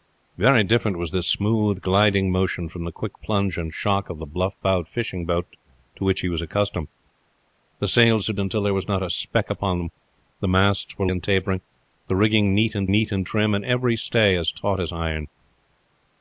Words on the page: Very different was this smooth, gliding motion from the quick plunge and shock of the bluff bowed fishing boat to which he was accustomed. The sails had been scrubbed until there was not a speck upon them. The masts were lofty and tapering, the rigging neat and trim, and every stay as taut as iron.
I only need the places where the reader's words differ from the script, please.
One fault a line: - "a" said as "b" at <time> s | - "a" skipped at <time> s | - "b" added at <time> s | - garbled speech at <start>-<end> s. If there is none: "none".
- "been scrubbed" skipped at 8.3 s
- "lofty" skipped at 11.1 s
- "neat and" added at 12.9 s